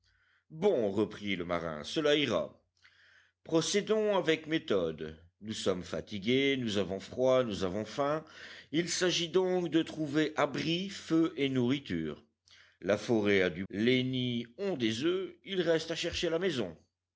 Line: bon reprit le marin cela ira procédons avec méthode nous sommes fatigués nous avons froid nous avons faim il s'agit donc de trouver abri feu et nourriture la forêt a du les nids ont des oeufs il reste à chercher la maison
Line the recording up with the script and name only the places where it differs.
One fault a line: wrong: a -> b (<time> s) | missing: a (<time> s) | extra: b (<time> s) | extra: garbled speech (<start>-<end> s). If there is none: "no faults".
no faults